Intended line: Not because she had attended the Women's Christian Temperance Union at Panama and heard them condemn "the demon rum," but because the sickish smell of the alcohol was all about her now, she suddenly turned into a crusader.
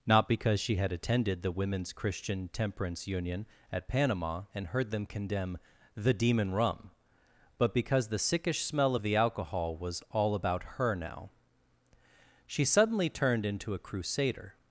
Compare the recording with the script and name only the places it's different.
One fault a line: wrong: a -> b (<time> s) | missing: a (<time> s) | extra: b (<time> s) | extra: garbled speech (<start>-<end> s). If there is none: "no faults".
no faults